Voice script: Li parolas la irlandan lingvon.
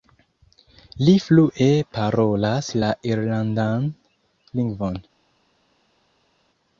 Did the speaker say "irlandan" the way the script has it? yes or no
yes